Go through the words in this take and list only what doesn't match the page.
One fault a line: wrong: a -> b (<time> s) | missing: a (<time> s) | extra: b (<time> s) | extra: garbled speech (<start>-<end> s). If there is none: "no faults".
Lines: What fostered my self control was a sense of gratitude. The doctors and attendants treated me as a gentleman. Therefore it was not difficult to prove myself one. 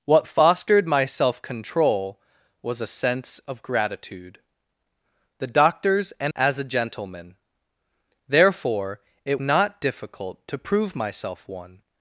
missing: attendants treated me (6.3 s)
missing: was (9.4 s)